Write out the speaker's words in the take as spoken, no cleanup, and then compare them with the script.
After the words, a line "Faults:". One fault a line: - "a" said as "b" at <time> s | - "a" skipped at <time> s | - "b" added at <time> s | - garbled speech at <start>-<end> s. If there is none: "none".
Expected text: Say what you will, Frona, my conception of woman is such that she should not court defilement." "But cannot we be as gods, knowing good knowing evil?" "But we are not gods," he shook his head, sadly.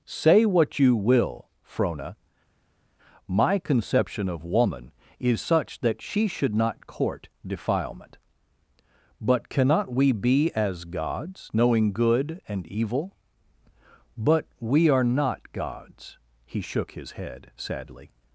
Say what you will, Frona, my conception of woman is such that she should not court defilement." "But cannot we be as gods, knowing good and evil?" "But we are not gods," he shook his head, sadly.
Faults:
- "knowing" said as "and" at 12.5 s